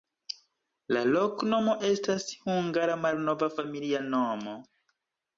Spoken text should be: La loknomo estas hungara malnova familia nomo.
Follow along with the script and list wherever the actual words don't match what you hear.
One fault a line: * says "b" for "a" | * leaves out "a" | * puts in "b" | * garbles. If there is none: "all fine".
all fine